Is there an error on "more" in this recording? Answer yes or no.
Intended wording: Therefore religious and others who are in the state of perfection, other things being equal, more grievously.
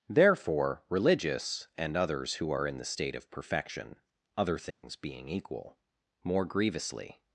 no